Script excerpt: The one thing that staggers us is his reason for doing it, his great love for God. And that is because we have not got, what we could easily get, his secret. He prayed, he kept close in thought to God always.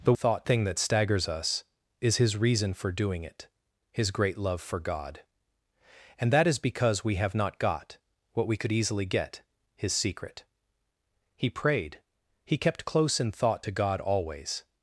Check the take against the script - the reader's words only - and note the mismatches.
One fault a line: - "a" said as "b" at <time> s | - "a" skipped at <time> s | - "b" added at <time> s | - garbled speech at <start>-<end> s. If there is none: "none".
- "one" said as "thought" at 0.1 s